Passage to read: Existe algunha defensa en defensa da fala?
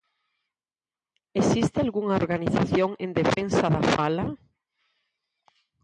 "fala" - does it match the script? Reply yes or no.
yes